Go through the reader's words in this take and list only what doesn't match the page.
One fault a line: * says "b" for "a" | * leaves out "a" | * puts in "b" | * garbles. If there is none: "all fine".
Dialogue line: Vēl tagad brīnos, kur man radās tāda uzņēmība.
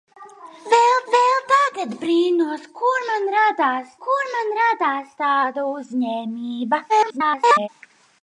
* puts in "vēl"
* puts in "kur man radās"
* garbles